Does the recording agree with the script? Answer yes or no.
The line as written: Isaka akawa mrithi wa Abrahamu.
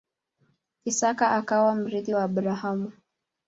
yes